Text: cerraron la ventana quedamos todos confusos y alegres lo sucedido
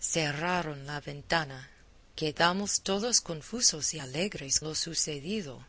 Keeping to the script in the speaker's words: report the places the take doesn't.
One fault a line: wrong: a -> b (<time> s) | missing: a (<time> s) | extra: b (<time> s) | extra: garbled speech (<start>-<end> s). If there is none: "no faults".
no faults